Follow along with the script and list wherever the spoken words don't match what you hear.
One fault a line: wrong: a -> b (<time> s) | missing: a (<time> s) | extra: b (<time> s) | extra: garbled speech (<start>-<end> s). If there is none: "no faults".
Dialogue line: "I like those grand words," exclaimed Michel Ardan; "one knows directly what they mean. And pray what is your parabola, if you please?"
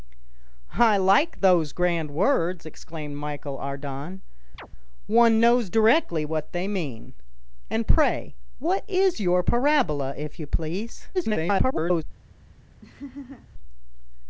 extra: garbled speech (11.1-12.0 s)